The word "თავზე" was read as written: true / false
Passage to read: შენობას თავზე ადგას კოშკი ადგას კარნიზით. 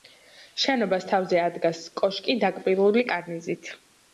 true